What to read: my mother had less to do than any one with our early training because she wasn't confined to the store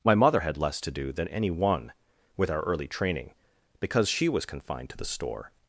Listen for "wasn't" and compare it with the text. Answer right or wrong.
wrong